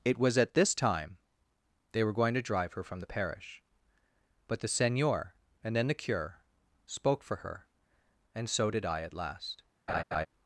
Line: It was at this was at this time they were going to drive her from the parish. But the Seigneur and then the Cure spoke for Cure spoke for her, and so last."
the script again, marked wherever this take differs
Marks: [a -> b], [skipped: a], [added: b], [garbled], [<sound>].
It was at this [skipped: was at this] time they were going to drive her from the parish. But the Seigneur and then the Cure spoke for [Cure spoke for her, and so -> her and so did I at] last." [laugh]